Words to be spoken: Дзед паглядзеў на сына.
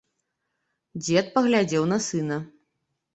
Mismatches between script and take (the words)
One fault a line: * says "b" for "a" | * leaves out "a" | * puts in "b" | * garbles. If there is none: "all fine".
all fine